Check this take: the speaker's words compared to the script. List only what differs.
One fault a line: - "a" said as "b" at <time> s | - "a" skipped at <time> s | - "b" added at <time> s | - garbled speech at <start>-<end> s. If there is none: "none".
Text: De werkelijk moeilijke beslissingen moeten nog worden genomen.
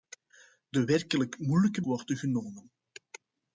- "beslissingen moeten nog" skipped at 1.8 s